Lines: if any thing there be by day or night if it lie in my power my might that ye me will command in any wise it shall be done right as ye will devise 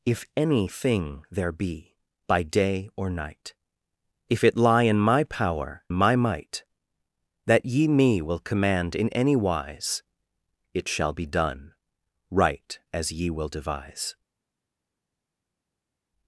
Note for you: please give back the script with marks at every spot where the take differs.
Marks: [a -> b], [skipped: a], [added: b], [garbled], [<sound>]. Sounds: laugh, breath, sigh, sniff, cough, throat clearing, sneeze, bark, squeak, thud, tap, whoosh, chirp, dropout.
if any thing there be by day or night if it lie in my power my might that ye me will command in any wise it shall be done right as ye will devise